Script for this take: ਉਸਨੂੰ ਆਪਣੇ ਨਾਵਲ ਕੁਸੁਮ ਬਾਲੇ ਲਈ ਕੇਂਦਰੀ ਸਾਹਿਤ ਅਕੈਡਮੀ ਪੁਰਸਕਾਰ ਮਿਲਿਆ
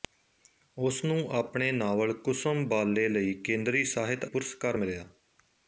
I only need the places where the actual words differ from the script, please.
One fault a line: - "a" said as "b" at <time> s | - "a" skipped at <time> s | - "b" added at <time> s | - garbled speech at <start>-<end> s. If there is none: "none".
- "ਅਕੈਡਮੀ" skipped at 4.2 s